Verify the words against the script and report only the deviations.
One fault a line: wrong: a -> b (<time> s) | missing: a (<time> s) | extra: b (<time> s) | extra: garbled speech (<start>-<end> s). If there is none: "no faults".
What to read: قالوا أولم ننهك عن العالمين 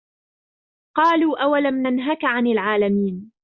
no faults